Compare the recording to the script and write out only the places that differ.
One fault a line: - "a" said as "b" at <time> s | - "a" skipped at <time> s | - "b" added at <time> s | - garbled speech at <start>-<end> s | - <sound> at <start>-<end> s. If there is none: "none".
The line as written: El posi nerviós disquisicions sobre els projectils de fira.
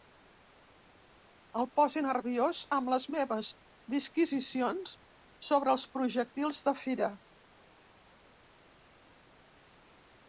- "amb les meves" added at 2.8 s